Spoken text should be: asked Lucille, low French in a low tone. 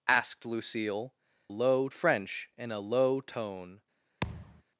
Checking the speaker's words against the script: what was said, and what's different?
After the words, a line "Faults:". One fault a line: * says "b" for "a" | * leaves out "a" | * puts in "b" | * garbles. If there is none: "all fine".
asked Lucille, low French in a low tone.
Faults:
all fine